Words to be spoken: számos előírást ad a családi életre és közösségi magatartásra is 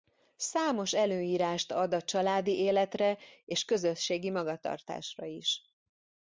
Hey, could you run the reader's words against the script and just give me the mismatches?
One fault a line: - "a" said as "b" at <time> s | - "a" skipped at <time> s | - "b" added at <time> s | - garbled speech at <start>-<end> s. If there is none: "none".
none